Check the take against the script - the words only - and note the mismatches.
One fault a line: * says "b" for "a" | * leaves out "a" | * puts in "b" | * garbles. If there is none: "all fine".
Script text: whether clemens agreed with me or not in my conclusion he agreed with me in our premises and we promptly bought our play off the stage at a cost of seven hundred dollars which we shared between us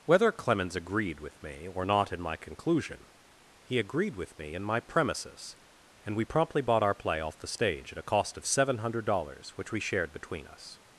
* says "my" for "our"